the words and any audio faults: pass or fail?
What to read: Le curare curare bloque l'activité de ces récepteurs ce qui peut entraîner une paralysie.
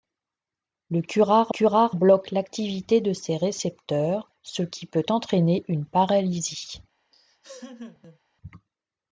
fail